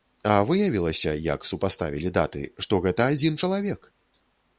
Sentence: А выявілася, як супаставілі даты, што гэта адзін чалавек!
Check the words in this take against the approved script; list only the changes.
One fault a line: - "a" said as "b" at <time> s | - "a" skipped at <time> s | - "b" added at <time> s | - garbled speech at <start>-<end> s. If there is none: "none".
none